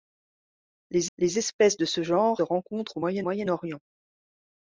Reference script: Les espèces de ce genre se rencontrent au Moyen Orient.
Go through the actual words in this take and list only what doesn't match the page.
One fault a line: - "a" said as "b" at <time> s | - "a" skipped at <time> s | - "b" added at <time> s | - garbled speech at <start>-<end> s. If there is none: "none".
- "les" added at 1.2 s
- "se" skipped at 2.4 s
- "Moyen" added at 3.2 s